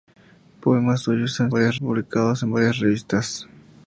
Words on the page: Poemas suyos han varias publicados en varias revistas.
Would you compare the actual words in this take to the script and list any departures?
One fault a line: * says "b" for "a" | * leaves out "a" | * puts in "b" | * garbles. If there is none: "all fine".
all fine